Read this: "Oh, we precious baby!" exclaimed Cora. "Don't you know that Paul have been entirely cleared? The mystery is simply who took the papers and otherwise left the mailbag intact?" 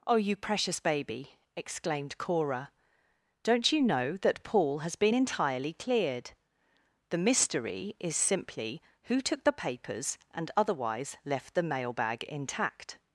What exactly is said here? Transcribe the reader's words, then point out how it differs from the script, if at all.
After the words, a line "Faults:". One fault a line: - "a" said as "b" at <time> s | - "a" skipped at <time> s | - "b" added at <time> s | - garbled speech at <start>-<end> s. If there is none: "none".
"Oh, you precious baby!" exclaimed Cora. "Don't you know that Paul has been entirely cleared? The mystery is simply who took the papers and otherwise left the mailbag intact?"
Faults:
- "we" said as "you" at 0.1 s
- "have" said as "has" at 4.8 s